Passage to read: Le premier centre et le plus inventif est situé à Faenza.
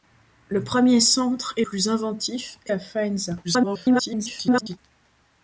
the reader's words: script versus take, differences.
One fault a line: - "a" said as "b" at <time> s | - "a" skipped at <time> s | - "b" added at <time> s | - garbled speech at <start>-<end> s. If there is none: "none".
- "le" skipped at 1.6 s
- "situé" skipped at 2.7 s
- garbled speech at 3.4-4.8 s